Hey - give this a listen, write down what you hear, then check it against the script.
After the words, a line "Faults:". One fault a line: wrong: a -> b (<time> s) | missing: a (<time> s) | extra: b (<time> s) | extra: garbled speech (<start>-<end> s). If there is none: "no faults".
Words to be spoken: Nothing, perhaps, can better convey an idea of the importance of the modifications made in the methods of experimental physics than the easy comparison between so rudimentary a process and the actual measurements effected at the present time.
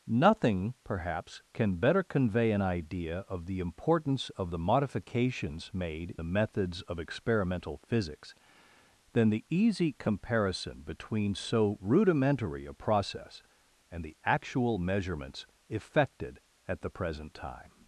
Nothing, perhaps, can better convey an idea of the importance of the modifications made the methods of experimental physics than the easy comparison between so rudimentary a process and the actual measurements effected at the present time.
Faults:
missing: in (6.2 s)